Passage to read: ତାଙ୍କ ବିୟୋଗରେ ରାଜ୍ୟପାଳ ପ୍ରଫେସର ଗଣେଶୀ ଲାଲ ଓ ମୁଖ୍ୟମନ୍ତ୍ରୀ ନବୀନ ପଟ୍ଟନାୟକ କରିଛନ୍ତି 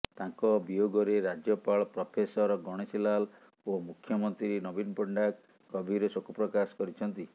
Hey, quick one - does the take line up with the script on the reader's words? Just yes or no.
no